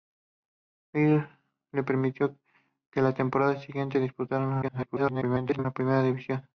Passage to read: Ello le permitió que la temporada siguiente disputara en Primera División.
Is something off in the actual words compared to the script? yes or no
yes